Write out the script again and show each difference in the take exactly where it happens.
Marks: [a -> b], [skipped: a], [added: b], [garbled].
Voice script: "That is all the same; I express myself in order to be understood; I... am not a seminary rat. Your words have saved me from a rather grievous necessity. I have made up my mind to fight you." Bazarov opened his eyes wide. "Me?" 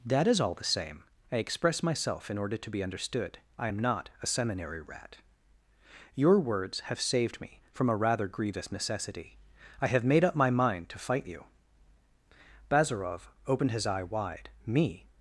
"That is all the same; I express myself in order to be understood; I... am not a seminary rat. Your words have saved me from a rather grievous necessity. I have made up my mind to fight you." Bazarov opened his [eyes -> eye] wide. "Me?"